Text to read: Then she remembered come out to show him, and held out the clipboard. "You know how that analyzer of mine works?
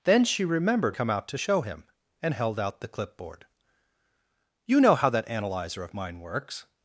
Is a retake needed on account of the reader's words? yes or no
no